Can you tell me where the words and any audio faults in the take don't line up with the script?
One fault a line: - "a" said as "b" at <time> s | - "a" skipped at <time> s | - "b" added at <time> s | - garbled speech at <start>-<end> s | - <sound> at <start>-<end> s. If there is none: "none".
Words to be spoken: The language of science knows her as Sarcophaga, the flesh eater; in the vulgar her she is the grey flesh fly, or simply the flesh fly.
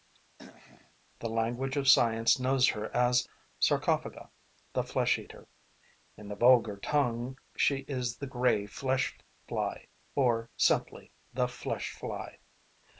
- throat clearing at 0.4-0.9 s
- "her" said as "tongue" at 6.8 s